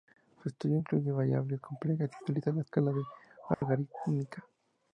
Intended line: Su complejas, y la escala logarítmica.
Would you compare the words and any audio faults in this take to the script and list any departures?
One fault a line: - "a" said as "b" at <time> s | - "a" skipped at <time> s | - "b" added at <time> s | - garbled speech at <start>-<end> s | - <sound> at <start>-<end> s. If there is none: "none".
- "estudio incluye variables" added at 0.5 s
- "utiliza" added at 2.2 s
- dropout at 3.5-3.6 s